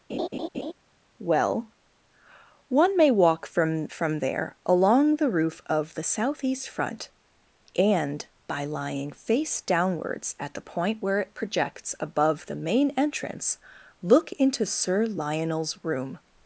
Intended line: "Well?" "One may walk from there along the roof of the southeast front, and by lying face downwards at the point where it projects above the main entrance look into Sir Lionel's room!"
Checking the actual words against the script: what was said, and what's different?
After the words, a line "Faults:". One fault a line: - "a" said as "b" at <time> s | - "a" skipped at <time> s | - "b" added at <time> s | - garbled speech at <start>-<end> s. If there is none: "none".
"Well?" "One may walk from from there along the roof of the southeast front, and by lying face downwards at the point where it projects above the main entrance look into Sir Lionel's room!"
Faults:
- "from" added at 3.9 s